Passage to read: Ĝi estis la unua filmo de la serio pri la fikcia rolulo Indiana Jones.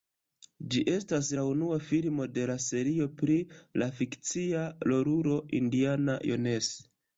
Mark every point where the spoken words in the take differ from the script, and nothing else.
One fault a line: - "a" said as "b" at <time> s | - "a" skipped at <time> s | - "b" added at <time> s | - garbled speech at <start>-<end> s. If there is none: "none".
- "estis" said as "estas" at 0.9 s